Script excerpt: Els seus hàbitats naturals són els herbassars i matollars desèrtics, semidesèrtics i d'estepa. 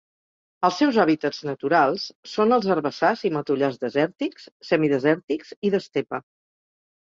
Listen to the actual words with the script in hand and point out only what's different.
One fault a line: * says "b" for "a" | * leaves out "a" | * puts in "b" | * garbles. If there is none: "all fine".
all fine